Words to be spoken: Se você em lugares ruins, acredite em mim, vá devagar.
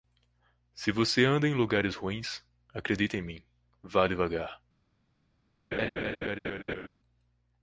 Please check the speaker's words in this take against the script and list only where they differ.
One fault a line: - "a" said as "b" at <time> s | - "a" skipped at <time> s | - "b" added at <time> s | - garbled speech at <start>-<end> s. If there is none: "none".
- "anda" added at 1.2 s